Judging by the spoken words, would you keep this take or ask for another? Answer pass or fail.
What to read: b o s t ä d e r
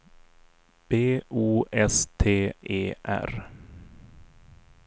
fail